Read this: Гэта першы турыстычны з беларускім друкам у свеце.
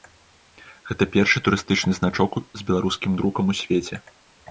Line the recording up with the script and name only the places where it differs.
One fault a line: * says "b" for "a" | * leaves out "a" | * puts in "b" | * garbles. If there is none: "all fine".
* puts in "значок"